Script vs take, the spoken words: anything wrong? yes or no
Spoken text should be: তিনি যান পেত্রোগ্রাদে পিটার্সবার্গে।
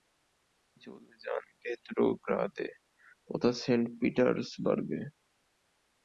yes